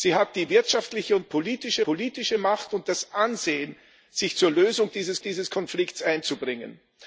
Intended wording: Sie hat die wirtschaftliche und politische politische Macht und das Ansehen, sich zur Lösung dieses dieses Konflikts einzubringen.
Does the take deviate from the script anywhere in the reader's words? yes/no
no